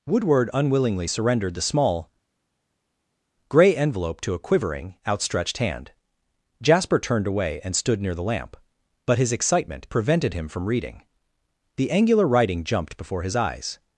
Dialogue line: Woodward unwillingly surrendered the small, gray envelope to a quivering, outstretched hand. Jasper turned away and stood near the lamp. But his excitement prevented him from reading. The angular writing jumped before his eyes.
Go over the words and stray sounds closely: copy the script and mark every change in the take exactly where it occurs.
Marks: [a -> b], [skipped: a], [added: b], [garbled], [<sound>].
Woodward unwillingly surrendered the small, gray envelope to a quivering, outstretched hand. Jasper turned away and stood near the lamp. But his excitement prevented him from reading. The angular writing jumped before his eyes.